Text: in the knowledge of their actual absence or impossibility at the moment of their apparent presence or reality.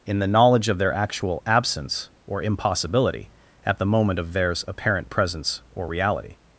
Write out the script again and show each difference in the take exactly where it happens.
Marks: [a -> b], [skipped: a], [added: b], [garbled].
in the knowledge of their actual absence or impossibility at the moment of [their -> theirs] apparent presence or reality.